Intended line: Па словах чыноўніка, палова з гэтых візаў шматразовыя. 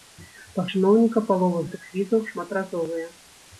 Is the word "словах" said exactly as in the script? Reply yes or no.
no